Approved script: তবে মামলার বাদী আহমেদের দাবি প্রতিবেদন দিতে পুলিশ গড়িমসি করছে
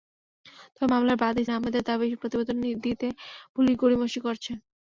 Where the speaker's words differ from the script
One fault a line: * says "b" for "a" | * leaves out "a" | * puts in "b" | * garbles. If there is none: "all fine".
all fine